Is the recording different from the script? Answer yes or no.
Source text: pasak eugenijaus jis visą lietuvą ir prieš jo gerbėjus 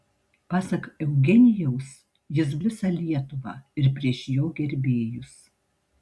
no